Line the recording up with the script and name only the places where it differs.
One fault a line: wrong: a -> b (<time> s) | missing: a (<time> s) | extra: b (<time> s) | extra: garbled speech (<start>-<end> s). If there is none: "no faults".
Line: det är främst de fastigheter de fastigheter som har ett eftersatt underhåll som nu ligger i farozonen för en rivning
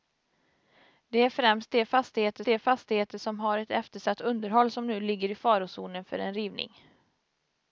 no faults